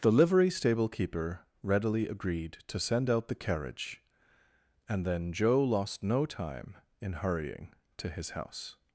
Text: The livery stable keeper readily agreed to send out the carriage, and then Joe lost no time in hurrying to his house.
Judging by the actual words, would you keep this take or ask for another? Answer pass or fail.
pass